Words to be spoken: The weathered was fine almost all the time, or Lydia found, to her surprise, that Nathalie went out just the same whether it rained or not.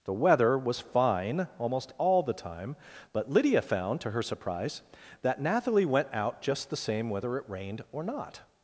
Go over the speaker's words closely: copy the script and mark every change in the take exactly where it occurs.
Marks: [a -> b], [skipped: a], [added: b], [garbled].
The [weathered -> weather] was fine almost all the time, [or -> but] Lydia found, to her surprise, that Nathalie went out just the same whether it rained or not.